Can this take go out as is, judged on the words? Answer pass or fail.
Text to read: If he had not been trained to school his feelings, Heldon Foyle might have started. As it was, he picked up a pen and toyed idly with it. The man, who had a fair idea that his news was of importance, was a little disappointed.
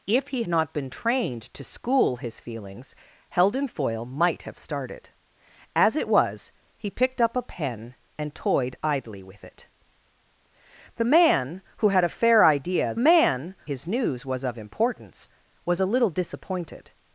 fail